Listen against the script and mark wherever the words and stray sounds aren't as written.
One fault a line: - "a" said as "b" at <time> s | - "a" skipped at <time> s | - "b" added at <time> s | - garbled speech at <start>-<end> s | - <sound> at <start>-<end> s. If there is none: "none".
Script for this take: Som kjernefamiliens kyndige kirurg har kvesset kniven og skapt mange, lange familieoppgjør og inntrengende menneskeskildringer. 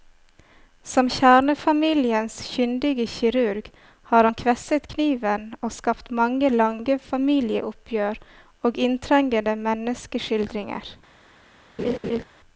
- "han" added at 4.3 s
- laugh at 11.8-12.2 s